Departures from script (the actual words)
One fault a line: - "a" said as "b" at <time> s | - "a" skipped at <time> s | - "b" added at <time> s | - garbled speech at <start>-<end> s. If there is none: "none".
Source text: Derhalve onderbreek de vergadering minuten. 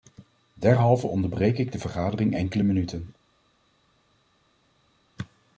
- "ik" added at 1.6 s
- "enkele" added at 2.4 s